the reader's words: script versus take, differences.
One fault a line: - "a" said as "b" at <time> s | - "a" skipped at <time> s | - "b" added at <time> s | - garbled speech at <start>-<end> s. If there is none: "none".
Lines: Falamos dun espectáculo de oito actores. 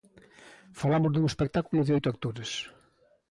none